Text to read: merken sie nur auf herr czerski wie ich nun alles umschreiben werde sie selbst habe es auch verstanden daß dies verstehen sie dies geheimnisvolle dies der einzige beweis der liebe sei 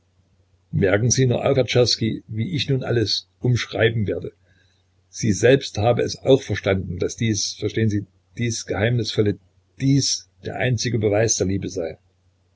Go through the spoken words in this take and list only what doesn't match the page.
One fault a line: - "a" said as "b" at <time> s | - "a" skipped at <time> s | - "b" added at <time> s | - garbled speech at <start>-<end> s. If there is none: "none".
none